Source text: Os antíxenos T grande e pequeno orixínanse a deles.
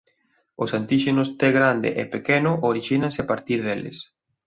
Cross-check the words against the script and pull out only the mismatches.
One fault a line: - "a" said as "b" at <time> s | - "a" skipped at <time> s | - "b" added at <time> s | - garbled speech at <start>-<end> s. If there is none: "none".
- "partir" added at 3.3 s